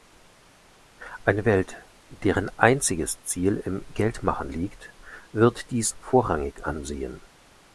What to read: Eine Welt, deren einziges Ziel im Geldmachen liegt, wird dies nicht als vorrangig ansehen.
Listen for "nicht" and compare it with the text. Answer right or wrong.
wrong